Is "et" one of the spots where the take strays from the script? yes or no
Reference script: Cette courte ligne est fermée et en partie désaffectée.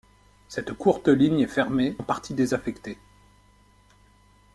yes